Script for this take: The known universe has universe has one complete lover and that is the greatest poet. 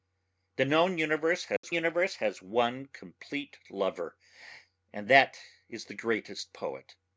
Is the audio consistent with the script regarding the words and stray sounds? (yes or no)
no